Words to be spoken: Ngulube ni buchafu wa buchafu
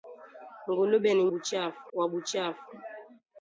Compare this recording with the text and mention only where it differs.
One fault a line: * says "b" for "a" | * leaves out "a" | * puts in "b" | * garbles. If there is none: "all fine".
all fine